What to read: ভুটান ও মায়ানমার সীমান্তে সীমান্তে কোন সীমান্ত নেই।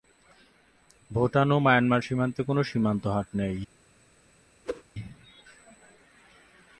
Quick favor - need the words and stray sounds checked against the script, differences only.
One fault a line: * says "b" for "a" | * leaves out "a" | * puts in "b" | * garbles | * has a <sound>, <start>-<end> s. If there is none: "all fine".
* leaves out "সীমান্তে"
* puts in "হাট"
* has a whoosh, 4.7-4.8 s